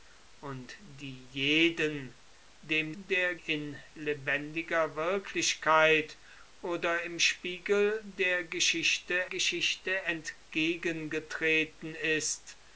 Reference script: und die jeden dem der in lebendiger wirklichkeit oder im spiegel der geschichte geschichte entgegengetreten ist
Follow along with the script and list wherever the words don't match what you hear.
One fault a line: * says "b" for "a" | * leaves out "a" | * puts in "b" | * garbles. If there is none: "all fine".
all fine